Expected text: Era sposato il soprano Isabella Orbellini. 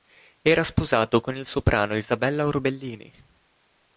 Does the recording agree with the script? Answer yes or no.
no